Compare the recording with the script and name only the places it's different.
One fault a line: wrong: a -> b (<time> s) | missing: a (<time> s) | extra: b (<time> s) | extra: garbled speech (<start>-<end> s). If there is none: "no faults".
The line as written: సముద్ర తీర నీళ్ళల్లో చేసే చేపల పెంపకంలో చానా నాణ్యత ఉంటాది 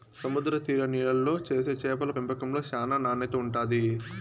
no faults